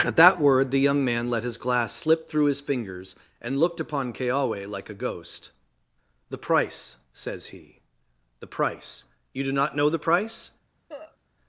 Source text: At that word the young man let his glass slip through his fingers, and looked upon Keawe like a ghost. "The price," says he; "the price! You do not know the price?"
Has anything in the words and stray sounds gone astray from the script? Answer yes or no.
yes